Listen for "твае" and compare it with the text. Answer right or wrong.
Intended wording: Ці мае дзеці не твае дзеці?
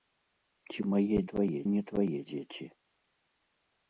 right